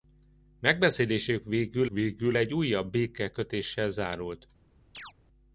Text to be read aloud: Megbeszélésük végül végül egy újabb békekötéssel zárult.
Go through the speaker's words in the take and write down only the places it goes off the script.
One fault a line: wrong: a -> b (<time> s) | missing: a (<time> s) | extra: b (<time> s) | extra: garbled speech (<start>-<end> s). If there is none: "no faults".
no faults